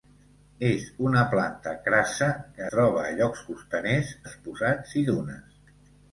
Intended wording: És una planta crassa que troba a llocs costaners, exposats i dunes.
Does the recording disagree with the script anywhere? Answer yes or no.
no